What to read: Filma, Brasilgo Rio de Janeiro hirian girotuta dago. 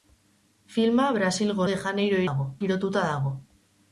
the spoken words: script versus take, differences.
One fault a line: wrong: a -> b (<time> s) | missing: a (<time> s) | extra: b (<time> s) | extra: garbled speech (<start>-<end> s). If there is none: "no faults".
missing: Rio (1.7 s)
wrong: hirian -> dago (2.3 s)